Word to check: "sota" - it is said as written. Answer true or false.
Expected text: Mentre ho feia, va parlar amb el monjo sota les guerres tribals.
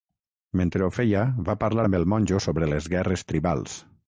false